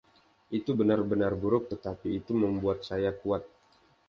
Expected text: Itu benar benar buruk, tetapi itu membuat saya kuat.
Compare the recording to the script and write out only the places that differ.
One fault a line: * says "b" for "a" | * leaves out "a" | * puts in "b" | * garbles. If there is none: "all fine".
all fine